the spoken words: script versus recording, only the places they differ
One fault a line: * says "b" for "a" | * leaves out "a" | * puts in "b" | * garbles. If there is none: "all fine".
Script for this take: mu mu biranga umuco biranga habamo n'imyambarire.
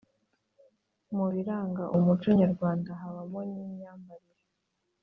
* leaves out "mu"
* says "nyarwanda" for "biranga"